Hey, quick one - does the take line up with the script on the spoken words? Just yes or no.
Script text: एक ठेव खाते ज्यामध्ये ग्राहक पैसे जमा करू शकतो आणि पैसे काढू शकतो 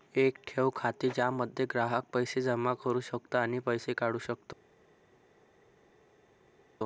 yes